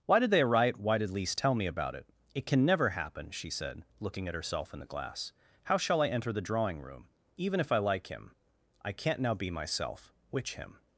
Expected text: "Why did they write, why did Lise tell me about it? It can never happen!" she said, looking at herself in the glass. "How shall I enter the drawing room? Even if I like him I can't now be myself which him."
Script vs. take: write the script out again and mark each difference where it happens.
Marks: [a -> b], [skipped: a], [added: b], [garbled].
"Why did they write, why did Lise tell me about it? It can never happen!" she said, looking at herself in the glass. "How shall I enter the drawing room? Even if I like him I can't now be myself which him."